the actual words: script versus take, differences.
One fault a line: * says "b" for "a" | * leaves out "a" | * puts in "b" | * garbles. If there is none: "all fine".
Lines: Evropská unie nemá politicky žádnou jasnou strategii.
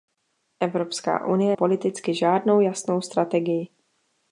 * leaves out "nemá"